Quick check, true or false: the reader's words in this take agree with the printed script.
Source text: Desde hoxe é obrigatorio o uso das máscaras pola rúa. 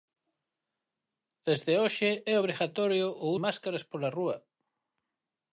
false